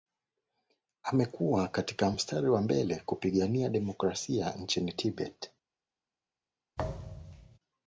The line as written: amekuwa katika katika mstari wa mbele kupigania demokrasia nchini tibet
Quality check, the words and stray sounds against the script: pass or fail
fail